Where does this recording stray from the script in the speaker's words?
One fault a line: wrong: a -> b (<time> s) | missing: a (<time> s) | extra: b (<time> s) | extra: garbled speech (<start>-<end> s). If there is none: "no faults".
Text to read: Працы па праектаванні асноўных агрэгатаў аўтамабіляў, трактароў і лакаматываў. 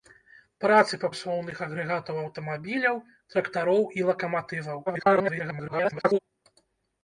missing: праектаванні (1.1 s)
extra: garbled speech (4.9-6.2 s)